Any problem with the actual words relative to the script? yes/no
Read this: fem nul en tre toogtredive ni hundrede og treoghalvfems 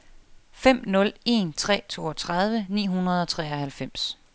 no